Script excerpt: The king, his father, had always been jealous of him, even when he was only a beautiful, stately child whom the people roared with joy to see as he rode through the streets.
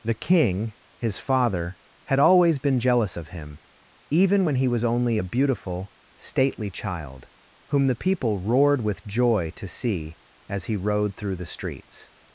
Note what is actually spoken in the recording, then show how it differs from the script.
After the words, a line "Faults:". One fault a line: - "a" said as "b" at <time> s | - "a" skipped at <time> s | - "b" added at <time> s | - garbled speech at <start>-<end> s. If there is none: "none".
The king, his father, had always been jealous of him, even when he was only a beautiful, stately child whom the people roared with joy to see as he rode through the streets.
Faults:
none